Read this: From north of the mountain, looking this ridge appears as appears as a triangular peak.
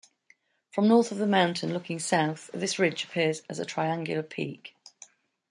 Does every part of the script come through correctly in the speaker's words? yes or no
no